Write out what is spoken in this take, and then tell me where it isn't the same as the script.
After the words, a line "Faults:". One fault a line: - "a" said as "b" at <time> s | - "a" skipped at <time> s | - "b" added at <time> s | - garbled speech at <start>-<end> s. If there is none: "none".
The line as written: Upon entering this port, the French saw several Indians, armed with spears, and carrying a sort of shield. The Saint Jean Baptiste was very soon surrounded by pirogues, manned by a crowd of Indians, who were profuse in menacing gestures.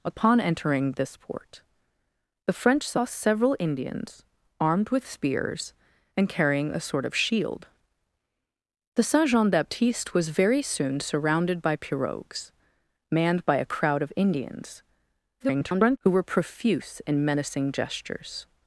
Upon entering this port, the French saw several Indians, armed with spears, and carrying a sort of shield. The Saint Jean Baptiste was very soon surrounded by pirogues, manned by a crowd of Indians, [garbled] who were profuse in menacing gestures.
Faults:
- garbled speech at 15.4-16.0 s